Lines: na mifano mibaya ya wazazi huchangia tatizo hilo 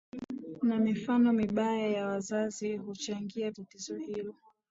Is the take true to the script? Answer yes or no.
yes